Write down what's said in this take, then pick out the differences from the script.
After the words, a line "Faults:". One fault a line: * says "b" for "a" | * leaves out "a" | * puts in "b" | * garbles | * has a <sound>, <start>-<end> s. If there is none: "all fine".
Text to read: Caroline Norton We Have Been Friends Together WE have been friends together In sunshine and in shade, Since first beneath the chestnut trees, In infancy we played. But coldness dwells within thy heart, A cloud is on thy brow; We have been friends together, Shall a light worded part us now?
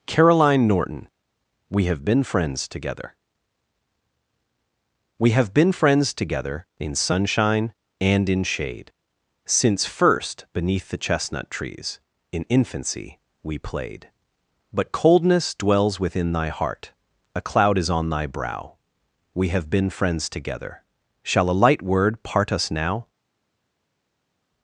Caroline Norton We Have Been Friends Together WE have been friends together In sunshine and in shade, Since first beneath the chestnut trees, In infancy we played. But coldness dwells within thy heart, A cloud is on thy brow; We have been friends together, Shall a light word part us now?
Faults:
* says "word" for "worded"